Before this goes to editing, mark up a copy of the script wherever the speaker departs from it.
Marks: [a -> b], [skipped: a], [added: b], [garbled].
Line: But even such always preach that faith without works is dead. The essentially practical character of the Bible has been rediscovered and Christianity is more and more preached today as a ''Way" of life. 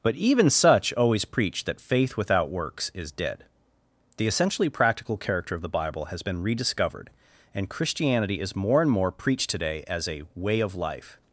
But even such always preach that faith without works is dead. The essentially practical character of the Bible has been rediscovered and Christianity is more and more preached today as a ''Way" of life.